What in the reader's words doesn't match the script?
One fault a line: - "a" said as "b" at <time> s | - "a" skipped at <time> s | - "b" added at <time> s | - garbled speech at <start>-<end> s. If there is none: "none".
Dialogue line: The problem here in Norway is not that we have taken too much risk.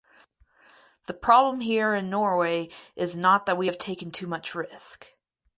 none